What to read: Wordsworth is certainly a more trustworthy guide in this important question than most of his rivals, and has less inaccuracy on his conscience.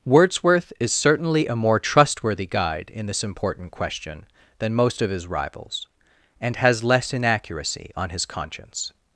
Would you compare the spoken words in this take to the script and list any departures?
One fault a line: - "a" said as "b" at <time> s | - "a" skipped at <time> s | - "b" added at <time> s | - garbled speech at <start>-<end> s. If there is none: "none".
none